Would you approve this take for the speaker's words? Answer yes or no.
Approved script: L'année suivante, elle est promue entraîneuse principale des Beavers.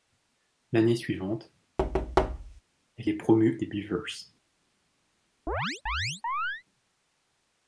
no